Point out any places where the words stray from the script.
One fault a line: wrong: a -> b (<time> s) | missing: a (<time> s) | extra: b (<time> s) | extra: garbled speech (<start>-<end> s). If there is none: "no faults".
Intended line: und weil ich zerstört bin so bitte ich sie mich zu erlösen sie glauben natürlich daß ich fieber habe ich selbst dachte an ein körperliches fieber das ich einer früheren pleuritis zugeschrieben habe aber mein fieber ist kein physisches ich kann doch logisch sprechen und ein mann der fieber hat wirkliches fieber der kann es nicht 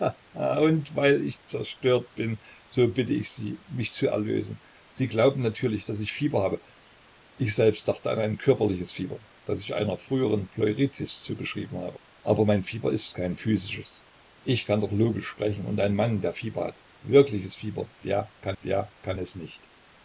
extra: der kann (18.6 s)